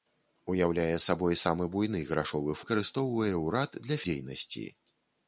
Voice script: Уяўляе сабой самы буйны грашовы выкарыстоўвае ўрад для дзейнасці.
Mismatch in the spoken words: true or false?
false